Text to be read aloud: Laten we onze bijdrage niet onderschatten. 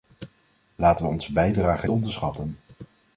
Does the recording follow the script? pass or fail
fail